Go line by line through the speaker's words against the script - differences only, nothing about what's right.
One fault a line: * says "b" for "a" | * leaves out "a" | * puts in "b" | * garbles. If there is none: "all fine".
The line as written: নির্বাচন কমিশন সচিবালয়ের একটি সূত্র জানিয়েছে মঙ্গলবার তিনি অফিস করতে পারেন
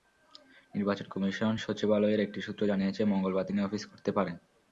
all fine